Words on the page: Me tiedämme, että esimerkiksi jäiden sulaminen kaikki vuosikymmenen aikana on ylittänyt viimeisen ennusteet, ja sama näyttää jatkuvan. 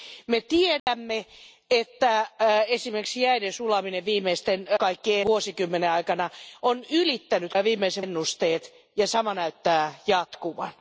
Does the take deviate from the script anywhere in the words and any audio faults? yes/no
yes